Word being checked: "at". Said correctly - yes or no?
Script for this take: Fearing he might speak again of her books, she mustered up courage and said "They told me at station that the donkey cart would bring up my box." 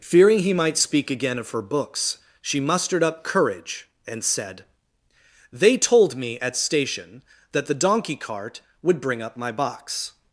yes